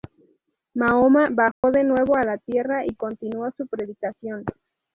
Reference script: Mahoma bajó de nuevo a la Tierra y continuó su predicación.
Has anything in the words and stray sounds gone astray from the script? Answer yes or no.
yes